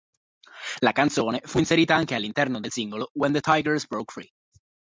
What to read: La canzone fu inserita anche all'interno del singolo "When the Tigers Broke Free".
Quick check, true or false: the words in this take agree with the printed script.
true